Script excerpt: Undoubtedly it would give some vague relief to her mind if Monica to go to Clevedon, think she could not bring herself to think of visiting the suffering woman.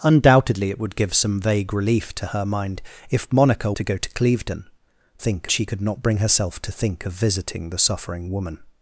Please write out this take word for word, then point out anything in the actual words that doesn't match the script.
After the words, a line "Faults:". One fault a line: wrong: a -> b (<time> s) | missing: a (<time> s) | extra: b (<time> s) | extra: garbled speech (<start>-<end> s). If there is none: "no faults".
Undoubtedly it would give some vague relief to her mind if Monica to go to Clevedon, think she could not bring herself to think of visiting the suffering woman.
Faults:
no faults